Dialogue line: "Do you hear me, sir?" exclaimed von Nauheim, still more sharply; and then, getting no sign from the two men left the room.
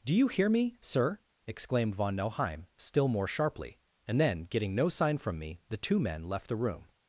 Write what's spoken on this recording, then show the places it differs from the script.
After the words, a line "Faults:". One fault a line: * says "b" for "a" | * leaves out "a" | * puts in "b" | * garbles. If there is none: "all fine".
"Do you hear me, sir?" exclaimed von Nauheim, still more sharply; and then, getting no sign from me, the two men left the room.
Faults:
* puts in "me"